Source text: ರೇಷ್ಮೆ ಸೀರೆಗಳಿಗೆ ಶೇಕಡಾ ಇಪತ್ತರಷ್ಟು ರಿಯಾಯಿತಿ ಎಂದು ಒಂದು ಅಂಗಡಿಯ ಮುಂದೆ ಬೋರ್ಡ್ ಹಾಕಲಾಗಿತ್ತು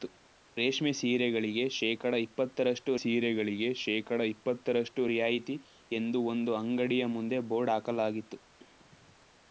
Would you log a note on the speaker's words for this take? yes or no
yes